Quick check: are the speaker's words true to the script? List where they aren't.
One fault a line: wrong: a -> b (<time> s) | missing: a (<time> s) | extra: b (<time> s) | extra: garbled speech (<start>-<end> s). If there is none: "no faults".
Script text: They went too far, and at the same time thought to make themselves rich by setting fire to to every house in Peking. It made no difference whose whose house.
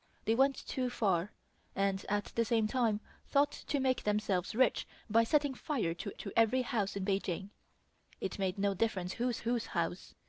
no faults